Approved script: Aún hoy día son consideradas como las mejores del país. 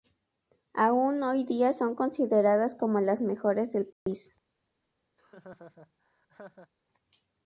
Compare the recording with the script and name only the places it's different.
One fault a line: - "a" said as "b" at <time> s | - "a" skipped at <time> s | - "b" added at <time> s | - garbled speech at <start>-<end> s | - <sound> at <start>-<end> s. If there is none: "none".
- dropout at 3.9-4.1 s
- laugh at 5.2-6.7 s